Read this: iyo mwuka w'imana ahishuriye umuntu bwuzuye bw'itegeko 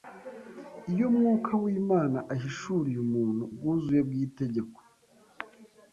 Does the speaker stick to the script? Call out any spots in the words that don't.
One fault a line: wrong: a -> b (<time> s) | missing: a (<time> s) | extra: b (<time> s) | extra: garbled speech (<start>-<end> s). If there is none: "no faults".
no faults